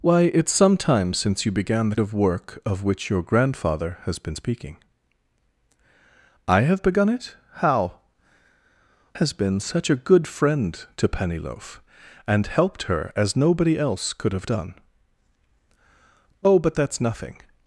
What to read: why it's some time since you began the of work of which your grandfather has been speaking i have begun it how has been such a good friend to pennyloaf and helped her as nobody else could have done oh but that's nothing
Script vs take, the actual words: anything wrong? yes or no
no